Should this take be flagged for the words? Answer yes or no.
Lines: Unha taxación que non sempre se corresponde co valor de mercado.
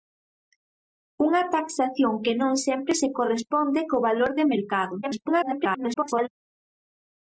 yes